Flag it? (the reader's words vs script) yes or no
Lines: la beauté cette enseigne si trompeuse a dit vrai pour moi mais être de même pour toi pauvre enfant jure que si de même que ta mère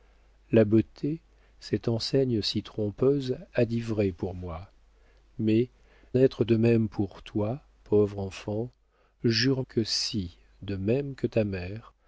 no